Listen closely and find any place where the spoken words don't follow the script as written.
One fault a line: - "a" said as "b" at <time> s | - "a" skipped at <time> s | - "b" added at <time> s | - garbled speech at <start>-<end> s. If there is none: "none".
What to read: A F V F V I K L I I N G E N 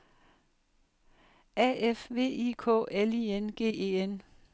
- "F V" skipped at 2.5 s
- "I" skipped at 3.3 s